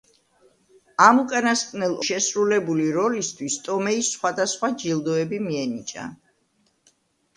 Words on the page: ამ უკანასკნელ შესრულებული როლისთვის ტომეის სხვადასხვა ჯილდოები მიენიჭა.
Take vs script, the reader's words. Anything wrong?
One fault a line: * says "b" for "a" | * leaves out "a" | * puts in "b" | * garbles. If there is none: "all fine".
all fine